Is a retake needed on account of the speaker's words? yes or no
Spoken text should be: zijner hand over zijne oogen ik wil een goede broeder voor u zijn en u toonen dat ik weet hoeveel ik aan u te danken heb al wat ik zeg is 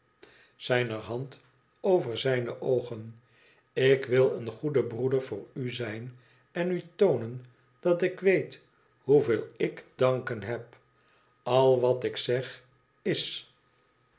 yes